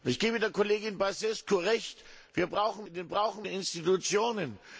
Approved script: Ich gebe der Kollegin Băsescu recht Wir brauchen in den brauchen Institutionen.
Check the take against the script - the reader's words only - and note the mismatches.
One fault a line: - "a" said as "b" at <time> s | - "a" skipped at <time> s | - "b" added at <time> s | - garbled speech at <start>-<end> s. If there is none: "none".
none